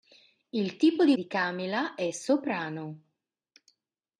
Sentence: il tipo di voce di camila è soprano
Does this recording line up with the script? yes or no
no